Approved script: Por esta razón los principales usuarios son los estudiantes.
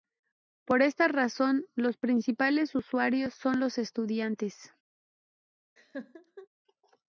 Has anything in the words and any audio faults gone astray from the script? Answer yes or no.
yes